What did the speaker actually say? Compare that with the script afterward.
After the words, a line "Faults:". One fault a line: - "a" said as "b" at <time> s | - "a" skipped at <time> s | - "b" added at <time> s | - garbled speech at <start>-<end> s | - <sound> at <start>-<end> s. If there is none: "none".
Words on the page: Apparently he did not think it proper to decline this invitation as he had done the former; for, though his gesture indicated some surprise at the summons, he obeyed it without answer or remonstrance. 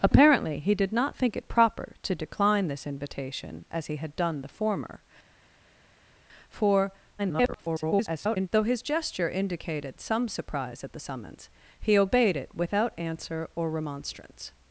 Apparently he did not think it proper to decline this invitation as he had done the former; for, [garbled] though his gesture indicated some surprise at the summons, he obeyed it without answer or remonstrance.
Faults:
- garbled speech at 7.2-8.5 s